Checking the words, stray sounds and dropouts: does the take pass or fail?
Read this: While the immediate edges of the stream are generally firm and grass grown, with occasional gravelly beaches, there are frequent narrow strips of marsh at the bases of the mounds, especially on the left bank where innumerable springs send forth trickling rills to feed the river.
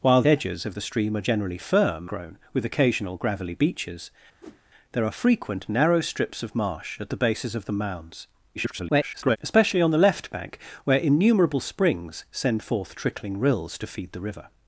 fail